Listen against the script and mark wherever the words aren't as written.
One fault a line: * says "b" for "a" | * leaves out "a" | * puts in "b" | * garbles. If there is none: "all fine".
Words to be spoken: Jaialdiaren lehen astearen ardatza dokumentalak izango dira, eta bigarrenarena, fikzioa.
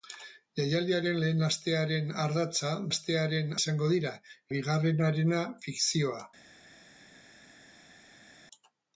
* says "astearen" for "dokumentalak"
* leaves out "eta"